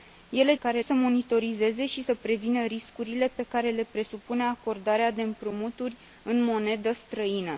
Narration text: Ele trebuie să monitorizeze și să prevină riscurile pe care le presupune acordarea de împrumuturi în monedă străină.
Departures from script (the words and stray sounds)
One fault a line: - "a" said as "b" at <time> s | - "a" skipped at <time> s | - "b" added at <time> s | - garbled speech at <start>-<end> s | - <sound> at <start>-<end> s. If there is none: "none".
- "trebuie" said as "care" at 0.5 s